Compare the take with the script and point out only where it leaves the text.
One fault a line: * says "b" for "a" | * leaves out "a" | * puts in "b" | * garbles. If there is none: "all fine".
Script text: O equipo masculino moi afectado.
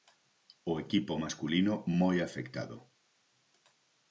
all fine